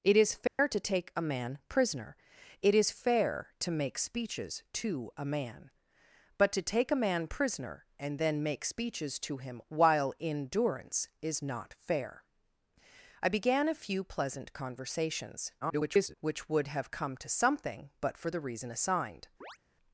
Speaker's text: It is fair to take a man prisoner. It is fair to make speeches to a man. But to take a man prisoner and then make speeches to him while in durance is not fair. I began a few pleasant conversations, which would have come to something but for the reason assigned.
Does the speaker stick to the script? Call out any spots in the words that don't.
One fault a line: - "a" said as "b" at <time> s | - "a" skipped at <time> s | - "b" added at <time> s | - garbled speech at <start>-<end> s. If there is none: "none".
- garbled speech at 15.6-16.1 s